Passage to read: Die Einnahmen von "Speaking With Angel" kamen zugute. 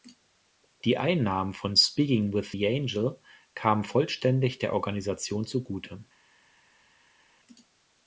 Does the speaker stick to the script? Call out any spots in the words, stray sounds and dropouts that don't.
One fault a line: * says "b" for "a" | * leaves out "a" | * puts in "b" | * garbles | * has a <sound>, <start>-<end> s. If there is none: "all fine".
* puts in "The"
* puts in "vollständig der Organisation"